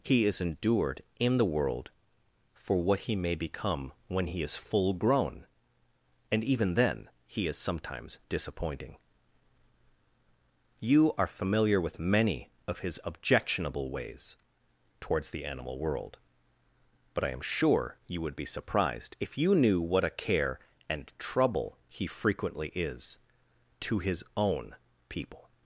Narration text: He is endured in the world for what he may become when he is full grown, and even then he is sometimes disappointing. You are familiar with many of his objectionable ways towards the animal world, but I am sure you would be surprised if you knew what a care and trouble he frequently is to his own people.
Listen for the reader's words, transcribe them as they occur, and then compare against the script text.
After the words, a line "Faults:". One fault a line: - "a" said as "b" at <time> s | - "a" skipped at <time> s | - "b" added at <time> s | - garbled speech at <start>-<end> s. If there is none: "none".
He is endured in the world for what he may become when he is full grown, and even then he is sometimes disappointing. You are familiar with many of his objectionable ways towards the animal world, but I am sure you would be surprised if you knew what a care and trouble he frequently is to his own people.
Faults:
none